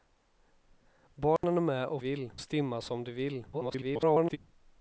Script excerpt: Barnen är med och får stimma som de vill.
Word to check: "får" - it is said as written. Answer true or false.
false